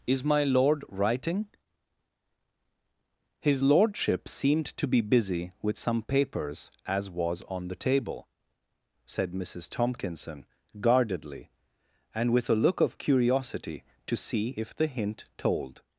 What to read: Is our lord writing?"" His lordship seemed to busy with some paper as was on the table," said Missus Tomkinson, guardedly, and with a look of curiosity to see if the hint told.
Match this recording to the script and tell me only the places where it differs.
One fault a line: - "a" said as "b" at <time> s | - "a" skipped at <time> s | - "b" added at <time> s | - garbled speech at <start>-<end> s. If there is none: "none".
- "our" said as "my" at 0.2 s
- "be" added at 4.9 s
- "paper" said as "papers" at 6.0 s